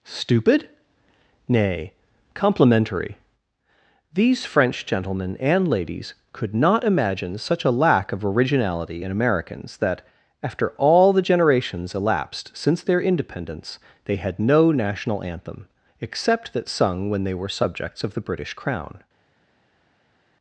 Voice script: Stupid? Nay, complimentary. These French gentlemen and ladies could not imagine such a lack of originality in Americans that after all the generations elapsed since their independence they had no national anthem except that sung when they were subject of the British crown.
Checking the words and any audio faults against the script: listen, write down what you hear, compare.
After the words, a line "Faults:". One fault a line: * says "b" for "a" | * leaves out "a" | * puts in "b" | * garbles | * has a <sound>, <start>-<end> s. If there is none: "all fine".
Stupid? Nay, complimentary. These French gentlemen and ladies could not imagine such a lack of originality in Americans that after all the generations elapsed since their independence they had no national anthem except that sung when they were subjects of the British crown.
Faults:
* says "subjects" for "subject"